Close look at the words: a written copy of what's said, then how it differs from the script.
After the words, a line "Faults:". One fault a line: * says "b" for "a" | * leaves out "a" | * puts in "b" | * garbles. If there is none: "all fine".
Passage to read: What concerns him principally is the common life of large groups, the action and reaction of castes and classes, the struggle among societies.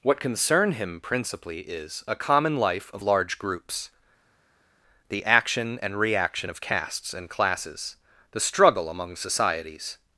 What concern him principally is a common life of large groups, the action and reaction of castes and classes, the struggle among societies.
Faults:
* says "concern" for "concerns"
* says "a" for "the"